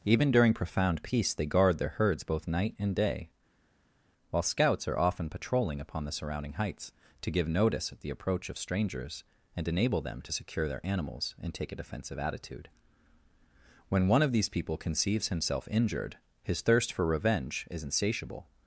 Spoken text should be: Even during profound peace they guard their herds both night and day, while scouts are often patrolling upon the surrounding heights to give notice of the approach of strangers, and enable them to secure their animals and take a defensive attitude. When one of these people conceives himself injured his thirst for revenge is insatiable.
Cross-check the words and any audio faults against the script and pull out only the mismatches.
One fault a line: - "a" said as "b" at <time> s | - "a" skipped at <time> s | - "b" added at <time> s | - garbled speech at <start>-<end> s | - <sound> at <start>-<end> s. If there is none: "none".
- "of" said as "at" at 7.9 s